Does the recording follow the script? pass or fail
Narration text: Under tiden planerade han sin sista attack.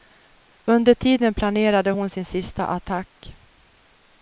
fail